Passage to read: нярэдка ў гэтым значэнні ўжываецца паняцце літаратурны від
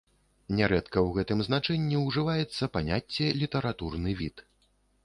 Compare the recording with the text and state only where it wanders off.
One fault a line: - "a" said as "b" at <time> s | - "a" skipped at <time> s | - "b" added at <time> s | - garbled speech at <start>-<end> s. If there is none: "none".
none